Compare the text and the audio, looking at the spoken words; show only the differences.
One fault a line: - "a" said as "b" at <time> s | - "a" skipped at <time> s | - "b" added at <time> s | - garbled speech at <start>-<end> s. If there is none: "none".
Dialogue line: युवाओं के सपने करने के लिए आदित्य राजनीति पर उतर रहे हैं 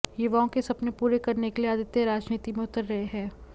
- "पूरे" added at 1.0 s
- "पर" said as "में" at 2.5 s